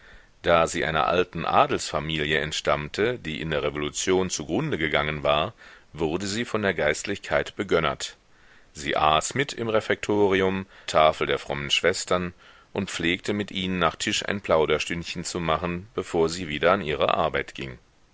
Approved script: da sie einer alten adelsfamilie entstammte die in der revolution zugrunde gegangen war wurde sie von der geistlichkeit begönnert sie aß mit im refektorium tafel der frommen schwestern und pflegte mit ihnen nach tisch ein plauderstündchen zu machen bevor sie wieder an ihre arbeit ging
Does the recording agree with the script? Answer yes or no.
yes